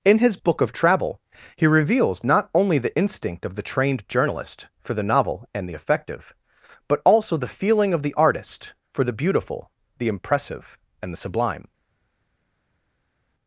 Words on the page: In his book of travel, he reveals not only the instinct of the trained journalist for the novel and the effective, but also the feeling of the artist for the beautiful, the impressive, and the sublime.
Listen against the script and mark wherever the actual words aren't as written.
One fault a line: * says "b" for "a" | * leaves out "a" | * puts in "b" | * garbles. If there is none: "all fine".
all fine